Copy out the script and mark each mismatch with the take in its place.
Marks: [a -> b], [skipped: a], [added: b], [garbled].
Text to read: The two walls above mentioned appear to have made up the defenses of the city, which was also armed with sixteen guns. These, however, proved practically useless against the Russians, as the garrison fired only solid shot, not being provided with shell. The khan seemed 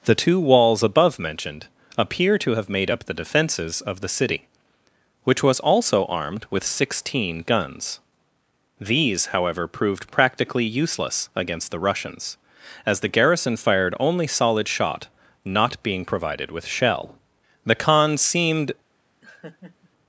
The two walls above mentioned appear to have made up the defenses of the city, which was also armed with sixteen guns. These, however, proved practically useless against the Russians, as the garrison fired only solid shot, not being provided with shell. The khan seemed